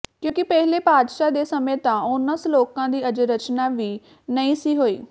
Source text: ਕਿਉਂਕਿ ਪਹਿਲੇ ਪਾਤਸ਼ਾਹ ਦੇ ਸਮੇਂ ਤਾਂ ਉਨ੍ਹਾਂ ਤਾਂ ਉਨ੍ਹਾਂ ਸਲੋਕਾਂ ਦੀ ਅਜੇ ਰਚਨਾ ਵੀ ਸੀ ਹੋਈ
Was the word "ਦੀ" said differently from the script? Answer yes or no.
no